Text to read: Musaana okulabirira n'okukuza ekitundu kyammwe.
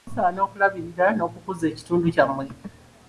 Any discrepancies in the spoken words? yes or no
no